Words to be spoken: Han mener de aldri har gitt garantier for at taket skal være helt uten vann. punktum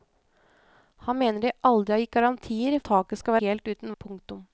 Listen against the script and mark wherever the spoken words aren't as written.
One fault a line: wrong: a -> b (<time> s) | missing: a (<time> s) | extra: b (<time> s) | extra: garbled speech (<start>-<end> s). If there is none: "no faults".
missing: for (2.8 s)
missing: være (3.4 s)
missing: vann (4.0 s)